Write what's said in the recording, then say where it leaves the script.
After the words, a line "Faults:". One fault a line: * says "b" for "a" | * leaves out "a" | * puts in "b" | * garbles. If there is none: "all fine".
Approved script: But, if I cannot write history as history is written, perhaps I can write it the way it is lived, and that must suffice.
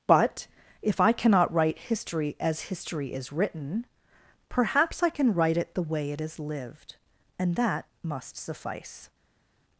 But, if I cannot write history as history is written, perhaps I can write it the way it is lived, and that must suffice.
Faults:
all fine